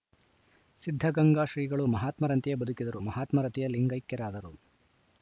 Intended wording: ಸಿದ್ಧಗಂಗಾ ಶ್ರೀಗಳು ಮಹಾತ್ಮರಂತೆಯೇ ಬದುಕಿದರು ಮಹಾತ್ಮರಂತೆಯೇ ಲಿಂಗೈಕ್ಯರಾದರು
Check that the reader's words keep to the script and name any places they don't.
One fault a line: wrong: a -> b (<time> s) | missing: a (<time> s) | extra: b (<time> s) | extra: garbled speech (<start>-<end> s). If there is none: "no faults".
no faults